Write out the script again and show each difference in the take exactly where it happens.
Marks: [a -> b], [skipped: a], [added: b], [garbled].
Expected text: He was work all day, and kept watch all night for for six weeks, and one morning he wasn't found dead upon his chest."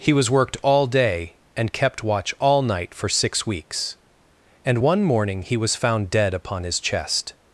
He was [work -> worked] all day, and kept watch all night for [skipped: for] six weeks, and one morning he [wasn't -> was] found dead upon his chest."